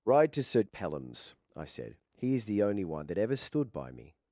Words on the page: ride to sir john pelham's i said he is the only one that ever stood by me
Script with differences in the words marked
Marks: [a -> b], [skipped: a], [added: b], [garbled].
ride to sir [skipped: john] pelham's i said he is the only one that ever stood by me